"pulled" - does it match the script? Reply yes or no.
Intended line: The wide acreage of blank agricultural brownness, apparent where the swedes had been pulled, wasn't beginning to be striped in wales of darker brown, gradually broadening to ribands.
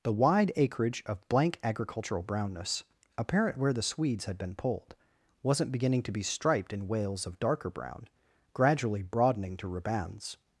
yes